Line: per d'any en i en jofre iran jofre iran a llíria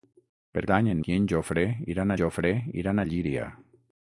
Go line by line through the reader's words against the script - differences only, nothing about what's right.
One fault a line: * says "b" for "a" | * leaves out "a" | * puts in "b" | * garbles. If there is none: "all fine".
all fine